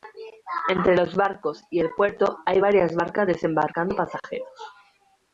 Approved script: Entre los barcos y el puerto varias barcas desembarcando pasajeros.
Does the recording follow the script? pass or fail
fail